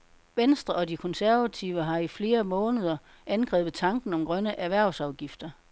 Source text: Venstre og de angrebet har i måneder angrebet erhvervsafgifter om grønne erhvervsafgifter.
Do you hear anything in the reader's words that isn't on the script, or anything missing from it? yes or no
yes